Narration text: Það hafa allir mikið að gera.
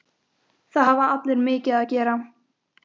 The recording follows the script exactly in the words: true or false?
true